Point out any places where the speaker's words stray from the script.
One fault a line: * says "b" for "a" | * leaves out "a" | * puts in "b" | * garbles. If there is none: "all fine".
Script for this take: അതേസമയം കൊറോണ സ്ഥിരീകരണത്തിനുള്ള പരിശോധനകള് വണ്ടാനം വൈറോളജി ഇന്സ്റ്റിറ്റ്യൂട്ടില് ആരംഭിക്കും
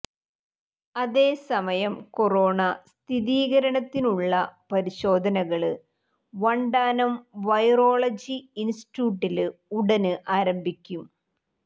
* puts in "ഉടന്"